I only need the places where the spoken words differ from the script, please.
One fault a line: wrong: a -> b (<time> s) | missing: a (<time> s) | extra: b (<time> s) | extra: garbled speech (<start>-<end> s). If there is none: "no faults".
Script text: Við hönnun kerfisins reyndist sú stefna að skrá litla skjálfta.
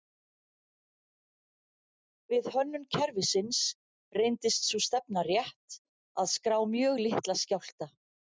extra: rétt (5.3 s)
extra: mjög (6.8 s)